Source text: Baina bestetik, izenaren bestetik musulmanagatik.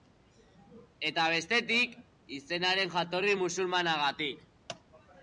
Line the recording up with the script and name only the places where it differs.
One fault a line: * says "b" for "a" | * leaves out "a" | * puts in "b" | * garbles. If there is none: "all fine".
* says "Eta" for "Baina"
* says "jatorri" for "bestetik"